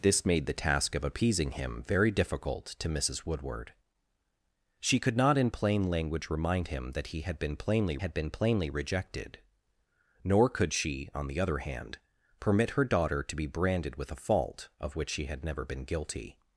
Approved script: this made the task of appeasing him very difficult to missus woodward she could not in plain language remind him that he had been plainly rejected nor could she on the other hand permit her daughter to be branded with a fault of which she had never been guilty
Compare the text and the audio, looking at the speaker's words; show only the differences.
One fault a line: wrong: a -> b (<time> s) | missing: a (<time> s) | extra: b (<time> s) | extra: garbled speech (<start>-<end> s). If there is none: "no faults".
extra: had been plainly (8.0 s)